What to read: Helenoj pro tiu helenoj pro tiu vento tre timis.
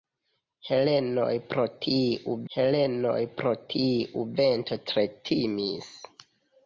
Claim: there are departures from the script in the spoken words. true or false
false